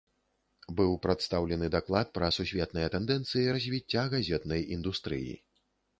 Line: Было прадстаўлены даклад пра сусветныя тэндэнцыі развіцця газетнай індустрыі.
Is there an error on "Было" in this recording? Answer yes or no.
yes